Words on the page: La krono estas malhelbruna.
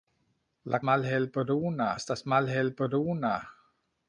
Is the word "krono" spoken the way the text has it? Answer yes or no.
no